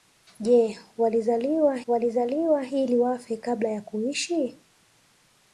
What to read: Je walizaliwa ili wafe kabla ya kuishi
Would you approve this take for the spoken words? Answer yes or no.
no